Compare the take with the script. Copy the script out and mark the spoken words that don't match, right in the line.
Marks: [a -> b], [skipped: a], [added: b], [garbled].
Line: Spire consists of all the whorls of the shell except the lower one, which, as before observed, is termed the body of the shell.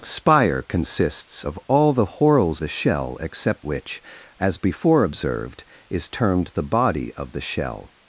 Spire consists of all the whorls [skipped: of] the shell except [skipped: the lower one,] which, as before observed, is termed the body of the shell.